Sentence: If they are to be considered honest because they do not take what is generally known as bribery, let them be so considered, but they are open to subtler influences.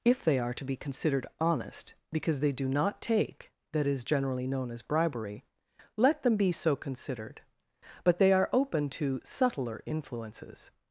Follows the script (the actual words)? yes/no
no